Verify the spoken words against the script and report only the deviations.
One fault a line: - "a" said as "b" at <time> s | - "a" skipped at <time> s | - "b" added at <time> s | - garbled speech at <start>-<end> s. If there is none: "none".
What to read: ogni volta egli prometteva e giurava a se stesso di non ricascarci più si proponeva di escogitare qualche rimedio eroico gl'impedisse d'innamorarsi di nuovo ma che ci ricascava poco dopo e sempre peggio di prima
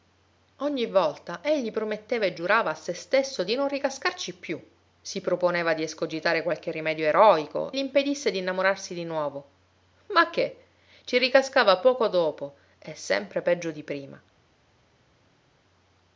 none